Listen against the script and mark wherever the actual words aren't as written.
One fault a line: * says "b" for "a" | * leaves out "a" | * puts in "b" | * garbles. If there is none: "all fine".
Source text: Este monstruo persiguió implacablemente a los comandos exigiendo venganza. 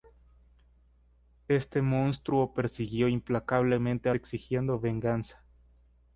* leaves out "los comandos"